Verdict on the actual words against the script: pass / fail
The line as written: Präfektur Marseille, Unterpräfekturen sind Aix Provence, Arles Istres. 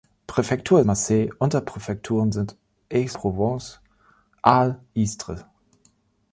pass